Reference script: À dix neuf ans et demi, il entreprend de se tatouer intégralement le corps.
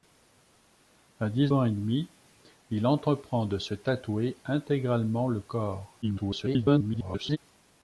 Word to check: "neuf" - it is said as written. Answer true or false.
false